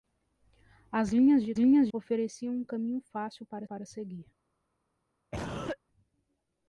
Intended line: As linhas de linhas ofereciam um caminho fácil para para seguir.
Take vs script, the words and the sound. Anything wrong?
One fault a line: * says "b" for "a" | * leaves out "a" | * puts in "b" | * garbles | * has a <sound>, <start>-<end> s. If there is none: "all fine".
* has a cough, 5.3-5.8 s